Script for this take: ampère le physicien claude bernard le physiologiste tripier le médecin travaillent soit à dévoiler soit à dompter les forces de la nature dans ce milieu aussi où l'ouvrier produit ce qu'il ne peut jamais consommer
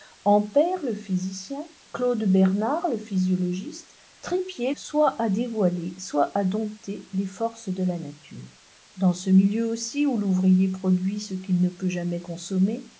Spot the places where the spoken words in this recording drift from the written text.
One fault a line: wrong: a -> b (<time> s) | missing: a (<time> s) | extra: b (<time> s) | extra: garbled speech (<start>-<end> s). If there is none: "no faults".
missing: le médecin travaillent (4.7 s)